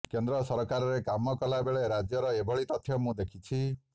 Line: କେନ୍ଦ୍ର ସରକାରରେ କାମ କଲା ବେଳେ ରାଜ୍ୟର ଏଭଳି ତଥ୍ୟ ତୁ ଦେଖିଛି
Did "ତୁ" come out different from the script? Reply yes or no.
yes